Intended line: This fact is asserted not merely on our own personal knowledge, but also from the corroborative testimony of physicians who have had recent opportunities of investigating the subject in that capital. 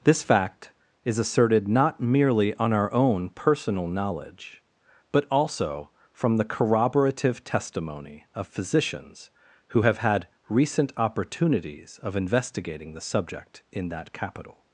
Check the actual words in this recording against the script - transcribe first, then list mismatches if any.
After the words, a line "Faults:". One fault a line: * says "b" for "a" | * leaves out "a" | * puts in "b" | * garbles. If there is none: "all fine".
This fact is asserted not merely on our own personal knowledge, but also from the corroborative testimony of physicians who have had recent opportunities of investigating the subject in that capital.
Faults:
all fine